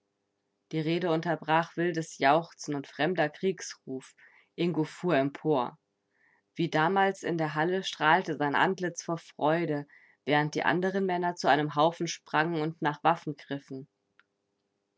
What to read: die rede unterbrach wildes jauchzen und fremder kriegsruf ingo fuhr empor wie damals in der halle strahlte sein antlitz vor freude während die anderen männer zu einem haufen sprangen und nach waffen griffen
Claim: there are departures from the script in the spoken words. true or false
false